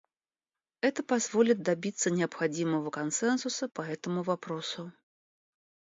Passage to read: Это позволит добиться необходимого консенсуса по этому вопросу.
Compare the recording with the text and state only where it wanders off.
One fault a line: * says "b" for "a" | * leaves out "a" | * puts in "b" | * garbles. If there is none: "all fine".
all fine